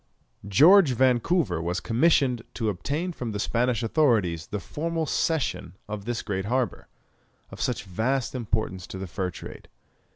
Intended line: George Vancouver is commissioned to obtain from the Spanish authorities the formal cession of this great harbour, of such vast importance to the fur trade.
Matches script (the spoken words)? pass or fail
fail